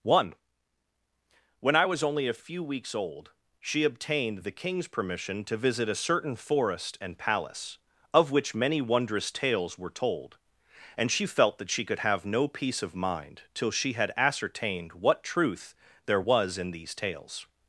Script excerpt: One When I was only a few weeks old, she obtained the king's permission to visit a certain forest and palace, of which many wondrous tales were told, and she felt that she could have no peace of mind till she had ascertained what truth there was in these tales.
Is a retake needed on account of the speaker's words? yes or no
no